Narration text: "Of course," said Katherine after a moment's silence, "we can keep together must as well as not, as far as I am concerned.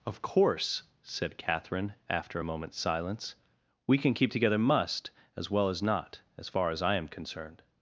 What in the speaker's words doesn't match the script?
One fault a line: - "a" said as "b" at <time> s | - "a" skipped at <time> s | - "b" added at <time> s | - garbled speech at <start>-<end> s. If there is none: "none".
none